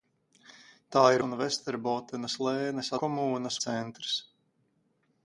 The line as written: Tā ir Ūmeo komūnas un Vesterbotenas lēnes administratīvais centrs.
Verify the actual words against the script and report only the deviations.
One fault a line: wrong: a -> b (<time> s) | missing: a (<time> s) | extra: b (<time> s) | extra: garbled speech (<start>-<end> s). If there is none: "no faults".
missing: Ūmeo komūnas (1.2 s)
wrong: administratīvais -> komūnas (3.0 s)